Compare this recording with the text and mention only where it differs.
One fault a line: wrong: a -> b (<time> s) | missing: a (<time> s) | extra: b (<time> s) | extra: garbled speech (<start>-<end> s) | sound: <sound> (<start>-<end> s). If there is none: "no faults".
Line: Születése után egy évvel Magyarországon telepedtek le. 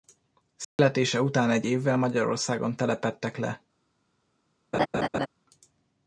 sound: dropout (0.6-0.8 s)
sound: laugh (4.7-5.3 s)